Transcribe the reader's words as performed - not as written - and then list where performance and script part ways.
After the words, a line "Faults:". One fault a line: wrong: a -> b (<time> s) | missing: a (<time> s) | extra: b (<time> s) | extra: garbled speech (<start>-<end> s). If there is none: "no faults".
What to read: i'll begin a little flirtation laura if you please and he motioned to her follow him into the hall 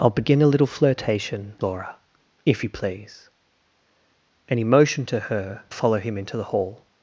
i'll begin a little flirtation laura if you please and he motioned to her follow him into the hall
Faults:
no faults